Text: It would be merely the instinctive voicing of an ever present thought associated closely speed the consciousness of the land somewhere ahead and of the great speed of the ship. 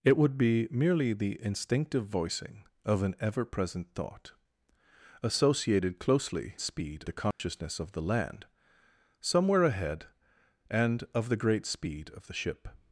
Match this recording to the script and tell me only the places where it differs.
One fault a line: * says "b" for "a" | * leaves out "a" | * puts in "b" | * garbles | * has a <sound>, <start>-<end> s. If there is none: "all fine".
* has a dropout, 7.3-7.4 s